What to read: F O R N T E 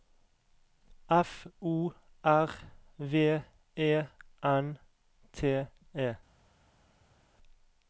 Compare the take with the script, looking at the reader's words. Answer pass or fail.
fail